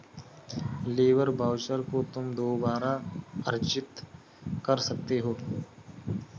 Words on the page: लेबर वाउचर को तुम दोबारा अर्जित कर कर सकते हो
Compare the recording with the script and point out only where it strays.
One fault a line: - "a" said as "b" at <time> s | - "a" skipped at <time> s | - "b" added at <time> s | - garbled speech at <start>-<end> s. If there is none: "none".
- "कर" skipped at 4.8 s